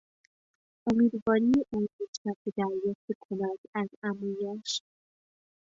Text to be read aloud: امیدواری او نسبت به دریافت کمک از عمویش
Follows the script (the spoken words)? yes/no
yes